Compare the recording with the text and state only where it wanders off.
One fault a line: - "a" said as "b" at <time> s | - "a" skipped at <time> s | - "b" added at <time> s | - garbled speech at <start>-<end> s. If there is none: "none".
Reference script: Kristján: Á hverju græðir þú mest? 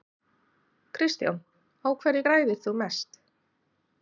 none